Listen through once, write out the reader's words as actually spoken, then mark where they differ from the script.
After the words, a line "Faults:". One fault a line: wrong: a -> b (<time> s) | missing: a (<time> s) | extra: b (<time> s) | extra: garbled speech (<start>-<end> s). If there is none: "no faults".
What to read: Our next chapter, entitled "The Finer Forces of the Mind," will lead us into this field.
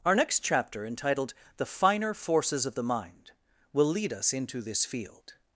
Our next chapter, entitled "The Finer Forces of the Mind," will lead us into this field.
Faults:
no faults